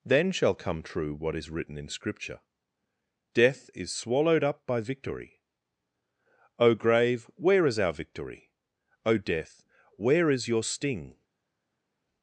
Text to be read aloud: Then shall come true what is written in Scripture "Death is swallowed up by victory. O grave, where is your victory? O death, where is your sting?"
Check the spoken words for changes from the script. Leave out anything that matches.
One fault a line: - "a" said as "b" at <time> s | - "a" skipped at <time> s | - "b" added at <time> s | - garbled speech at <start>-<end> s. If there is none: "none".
- "your" said as "our" at 7.8 s